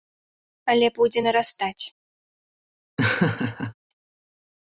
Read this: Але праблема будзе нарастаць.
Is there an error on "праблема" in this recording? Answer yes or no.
yes